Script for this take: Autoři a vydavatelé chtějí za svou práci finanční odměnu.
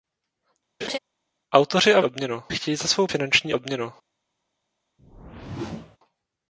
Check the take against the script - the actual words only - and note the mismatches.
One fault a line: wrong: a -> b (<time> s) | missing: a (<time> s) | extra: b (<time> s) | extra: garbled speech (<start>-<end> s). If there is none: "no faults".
wrong: vydavatelé -> odměnu (2.0 s)
missing: práci (3.1 s)